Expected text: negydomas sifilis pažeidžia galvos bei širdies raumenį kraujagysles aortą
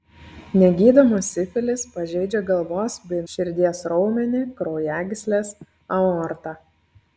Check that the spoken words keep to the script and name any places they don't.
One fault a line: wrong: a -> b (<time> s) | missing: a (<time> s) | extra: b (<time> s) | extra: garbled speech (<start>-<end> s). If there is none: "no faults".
no faults